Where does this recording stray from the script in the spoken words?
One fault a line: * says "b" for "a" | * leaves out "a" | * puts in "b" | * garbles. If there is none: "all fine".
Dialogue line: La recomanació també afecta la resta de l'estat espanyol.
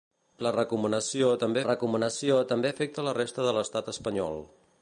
* puts in "recomanació també"